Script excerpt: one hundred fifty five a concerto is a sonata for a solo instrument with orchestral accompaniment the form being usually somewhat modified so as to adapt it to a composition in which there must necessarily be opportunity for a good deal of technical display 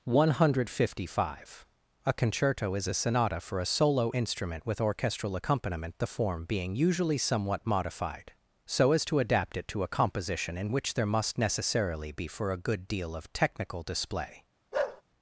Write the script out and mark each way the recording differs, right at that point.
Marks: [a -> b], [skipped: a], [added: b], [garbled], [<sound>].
one hundred fifty five a concerto is a sonata for a solo instrument with orchestral accompaniment the form being usually somewhat modified so as to adapt it to a composition in which there must necessarily be [skipped: opportunity] for a good deal of technical display [bark]